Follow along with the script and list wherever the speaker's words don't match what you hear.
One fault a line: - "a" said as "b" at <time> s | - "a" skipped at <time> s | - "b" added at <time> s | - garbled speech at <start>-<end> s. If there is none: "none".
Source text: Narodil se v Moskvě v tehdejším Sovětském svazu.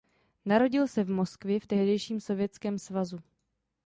none